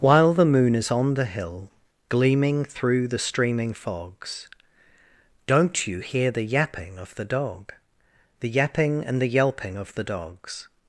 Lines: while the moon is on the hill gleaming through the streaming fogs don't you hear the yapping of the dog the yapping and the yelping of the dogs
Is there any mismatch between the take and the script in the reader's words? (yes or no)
no